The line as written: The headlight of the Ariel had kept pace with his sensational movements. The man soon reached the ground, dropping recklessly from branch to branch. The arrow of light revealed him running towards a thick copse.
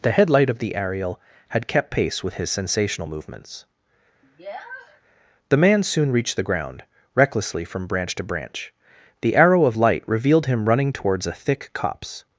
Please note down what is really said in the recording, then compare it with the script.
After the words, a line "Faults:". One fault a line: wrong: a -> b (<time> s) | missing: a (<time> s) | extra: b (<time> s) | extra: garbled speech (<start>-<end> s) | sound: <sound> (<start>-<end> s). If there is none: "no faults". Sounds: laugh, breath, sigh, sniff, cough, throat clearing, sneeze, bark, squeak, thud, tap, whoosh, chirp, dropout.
The headlight of the Ariel had kept pace with his sensational movements. The man soon reached the ground, recklessly from branch to branch. The arrow of light revealed him running towards a thick copse.
Faults:
sound: sniff (4.2-5.0 s)
missing: dropping (6.8 s)